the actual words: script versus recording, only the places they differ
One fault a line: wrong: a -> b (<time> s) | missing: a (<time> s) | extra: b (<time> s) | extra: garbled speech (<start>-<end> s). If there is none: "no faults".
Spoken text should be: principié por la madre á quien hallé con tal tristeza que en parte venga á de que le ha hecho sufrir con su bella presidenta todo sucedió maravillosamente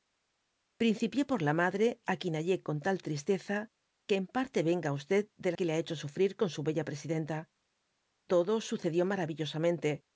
no faults